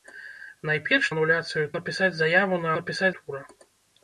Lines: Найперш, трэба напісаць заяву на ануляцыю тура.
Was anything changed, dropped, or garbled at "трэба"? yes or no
yes